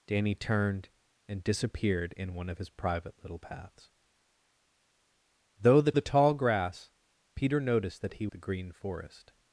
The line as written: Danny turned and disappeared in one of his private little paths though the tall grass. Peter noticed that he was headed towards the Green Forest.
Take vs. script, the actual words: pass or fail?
fail